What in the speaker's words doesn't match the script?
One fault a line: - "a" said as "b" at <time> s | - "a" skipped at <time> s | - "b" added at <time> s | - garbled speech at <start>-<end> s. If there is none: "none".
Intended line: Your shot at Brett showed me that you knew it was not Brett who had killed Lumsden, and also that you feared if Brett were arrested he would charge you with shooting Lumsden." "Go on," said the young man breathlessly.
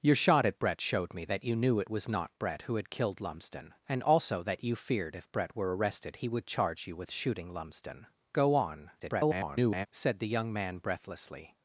- garbled speech at 9.0-9.9 s